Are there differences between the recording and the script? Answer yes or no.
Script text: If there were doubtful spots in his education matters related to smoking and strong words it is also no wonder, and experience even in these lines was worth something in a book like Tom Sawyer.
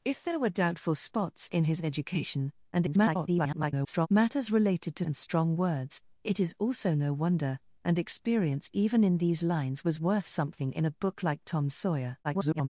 yes